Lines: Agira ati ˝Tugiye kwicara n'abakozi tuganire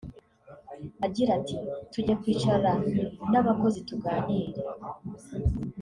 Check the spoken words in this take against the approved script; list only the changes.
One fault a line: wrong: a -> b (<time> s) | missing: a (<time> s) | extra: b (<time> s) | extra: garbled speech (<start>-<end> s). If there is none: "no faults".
no faults